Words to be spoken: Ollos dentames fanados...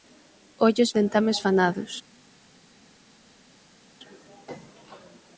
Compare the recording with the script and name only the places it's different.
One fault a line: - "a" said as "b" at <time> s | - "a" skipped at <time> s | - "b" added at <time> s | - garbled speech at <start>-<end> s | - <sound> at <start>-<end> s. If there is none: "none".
none